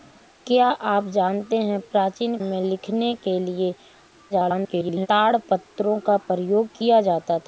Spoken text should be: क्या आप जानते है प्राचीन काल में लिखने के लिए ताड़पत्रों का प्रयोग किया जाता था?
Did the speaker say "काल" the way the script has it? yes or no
no